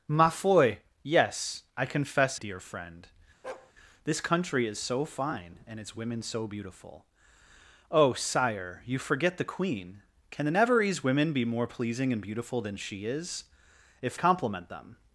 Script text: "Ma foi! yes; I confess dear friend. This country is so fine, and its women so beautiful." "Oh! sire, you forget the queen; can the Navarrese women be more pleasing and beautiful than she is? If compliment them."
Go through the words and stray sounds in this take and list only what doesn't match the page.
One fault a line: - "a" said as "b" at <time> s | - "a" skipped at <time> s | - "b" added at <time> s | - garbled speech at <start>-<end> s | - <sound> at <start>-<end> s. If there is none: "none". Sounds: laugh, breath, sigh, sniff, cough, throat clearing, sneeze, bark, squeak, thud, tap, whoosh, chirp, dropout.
- bark at 3.4-3.7 s